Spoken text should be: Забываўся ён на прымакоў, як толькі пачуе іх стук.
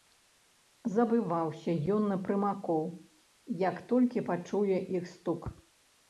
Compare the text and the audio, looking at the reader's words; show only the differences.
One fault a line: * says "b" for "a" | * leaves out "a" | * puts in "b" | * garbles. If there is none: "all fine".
all fine